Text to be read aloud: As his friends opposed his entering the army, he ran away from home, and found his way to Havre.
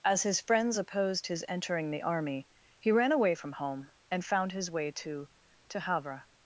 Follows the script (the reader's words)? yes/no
no